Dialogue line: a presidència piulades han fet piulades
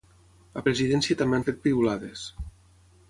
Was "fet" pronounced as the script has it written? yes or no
yes